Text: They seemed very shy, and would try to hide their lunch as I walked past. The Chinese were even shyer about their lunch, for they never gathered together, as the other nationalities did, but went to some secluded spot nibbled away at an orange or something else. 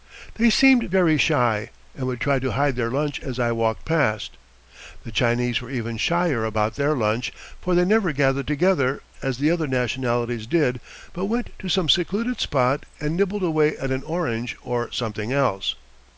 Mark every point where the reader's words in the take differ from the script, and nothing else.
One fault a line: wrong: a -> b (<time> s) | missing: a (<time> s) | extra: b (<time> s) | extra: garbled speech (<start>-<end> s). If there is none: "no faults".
extra: and (13.0 s)